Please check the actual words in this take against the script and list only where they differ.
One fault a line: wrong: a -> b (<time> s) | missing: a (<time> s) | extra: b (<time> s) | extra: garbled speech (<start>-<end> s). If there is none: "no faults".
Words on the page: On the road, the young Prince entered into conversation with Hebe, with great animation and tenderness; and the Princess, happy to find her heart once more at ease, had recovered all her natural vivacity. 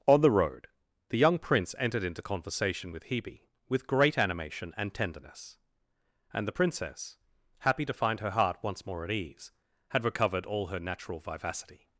no faults